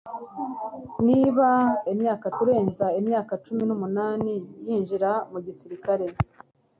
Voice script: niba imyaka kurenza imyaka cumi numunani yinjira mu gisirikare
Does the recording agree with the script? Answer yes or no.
yes